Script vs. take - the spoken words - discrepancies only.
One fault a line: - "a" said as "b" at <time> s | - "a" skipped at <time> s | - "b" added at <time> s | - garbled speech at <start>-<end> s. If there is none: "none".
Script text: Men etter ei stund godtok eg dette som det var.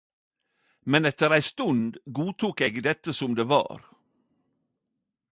none